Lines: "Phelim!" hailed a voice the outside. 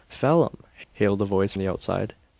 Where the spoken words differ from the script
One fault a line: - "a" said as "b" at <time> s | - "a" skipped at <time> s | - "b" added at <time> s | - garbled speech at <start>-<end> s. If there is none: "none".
none